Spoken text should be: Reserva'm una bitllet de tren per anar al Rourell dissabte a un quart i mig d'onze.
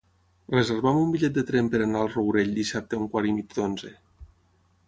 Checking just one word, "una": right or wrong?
wrong